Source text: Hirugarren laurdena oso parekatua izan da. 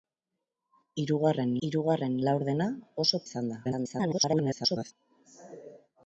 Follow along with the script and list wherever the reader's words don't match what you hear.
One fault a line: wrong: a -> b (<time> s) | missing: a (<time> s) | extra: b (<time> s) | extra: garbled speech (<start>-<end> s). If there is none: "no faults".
extra: hirugarren (1.7 s)
missing: parekatua (3.2 s)
extra: garbled speech (3.6-4.9 s)